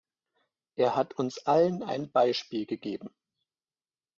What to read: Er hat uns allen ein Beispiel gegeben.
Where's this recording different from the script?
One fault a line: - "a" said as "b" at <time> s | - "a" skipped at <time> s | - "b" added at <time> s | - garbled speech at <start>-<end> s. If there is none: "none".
none